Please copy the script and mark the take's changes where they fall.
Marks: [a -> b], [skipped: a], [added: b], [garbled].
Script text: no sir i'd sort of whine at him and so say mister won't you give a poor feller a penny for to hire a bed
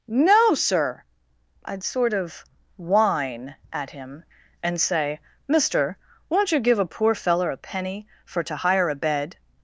no sir i'd sort of whine at him and [skipped: so] say mister won't you give a poor feller a penny for to hire a bed